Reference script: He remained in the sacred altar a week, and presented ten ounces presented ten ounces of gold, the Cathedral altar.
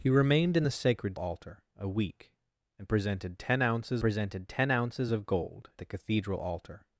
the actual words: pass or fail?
pass